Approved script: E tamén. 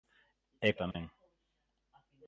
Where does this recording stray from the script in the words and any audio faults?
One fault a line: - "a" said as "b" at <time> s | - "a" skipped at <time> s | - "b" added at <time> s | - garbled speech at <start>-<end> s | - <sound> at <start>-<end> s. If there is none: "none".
- dropout at 0.9-0.9 s